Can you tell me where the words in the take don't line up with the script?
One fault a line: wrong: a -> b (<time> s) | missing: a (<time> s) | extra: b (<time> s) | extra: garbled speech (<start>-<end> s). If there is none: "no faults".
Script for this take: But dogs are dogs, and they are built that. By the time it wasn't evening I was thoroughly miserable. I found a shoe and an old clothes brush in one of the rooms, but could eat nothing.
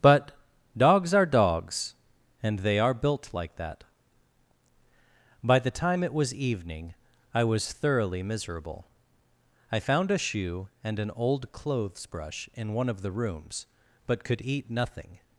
extra: like (3.3 s)
wrong: wasn't -> was (6.1 s)